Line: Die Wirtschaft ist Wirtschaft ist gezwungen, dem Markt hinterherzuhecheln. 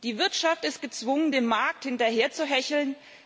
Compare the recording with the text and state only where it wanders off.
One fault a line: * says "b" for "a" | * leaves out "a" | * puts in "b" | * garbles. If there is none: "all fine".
* leaves out "Wirtschaft ist"